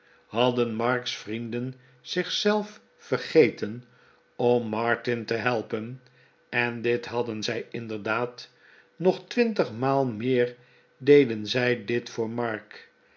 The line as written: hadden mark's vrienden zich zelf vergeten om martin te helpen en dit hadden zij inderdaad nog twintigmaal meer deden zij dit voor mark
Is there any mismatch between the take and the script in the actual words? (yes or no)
no